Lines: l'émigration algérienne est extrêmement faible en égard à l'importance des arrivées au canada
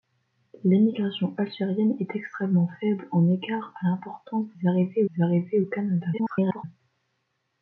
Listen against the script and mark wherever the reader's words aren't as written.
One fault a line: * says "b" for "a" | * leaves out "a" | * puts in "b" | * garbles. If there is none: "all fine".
* puts in "des arrivées"
* garbles